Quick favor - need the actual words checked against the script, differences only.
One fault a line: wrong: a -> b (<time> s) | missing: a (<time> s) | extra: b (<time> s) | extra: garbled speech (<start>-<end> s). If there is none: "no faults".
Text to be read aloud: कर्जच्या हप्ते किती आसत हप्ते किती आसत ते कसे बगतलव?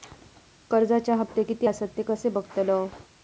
missing: हप्ते किती आसत (2.0 s)